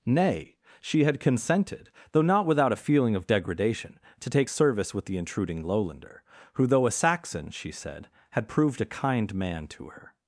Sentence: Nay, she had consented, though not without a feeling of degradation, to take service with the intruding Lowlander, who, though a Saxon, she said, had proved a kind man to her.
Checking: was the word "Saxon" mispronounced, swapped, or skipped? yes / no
no